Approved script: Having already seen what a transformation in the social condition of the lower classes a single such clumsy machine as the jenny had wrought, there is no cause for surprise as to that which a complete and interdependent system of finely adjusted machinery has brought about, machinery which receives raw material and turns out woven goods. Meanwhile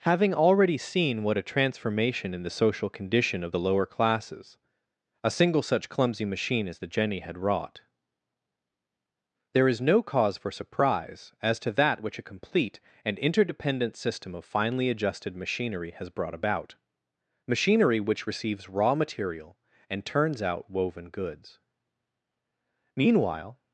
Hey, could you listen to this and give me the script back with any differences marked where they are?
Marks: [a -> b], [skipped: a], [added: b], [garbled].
Having already seen what a transformation in the social condition of the lower classes a single such clumsy machine as the jenny had wrought, there is no cause for surprise as to that which a complete and interdependent system of finely adjusted machinery has brought about, machinery which receives raw material and turns out woven goods. Meanwhile